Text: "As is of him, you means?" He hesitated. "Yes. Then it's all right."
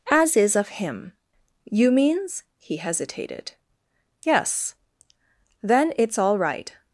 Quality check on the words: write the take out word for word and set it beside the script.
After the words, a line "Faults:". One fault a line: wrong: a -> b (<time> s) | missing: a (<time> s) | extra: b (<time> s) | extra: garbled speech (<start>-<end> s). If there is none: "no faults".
"As is of him, you means?" He hesitated. "Yes. Then it's all right."
Faults:
no faults